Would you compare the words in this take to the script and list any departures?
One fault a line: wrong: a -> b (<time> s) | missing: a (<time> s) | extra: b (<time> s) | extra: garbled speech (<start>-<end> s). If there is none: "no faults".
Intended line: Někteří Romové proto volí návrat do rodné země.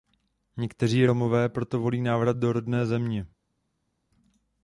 no faults